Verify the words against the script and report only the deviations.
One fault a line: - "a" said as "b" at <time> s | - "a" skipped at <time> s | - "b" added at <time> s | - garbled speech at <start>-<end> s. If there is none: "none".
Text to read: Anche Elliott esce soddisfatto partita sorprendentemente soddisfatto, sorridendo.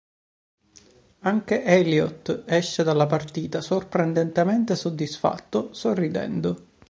- "soddisfatto" said as "dalla" at 2.8 s